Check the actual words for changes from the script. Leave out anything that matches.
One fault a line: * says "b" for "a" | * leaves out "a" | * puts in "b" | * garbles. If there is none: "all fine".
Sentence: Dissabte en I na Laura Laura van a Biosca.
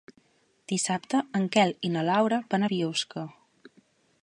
* puts in "Quel"
* leaves out "Laura"